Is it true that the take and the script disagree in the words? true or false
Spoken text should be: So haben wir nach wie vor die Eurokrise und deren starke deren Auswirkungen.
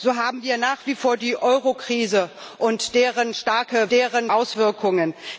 false